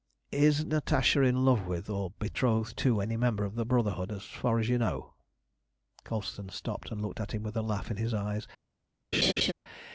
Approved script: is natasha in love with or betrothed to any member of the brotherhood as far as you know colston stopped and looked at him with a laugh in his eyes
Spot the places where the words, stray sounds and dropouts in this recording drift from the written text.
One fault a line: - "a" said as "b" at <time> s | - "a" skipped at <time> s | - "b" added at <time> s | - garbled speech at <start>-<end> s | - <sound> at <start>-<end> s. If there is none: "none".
- laugh at 9.1-9.5 s